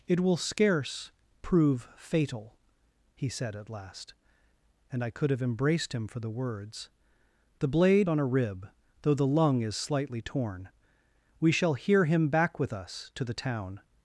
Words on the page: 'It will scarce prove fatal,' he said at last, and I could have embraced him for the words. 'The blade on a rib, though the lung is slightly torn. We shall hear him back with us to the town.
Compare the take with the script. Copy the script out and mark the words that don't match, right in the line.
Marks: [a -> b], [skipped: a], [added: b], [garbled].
'It will scarce prove fatal,' he said at last, and I could have embraced him for the words. 'The blade on a rib, though the lung is slightly torn. We shall hear him back with us to the town.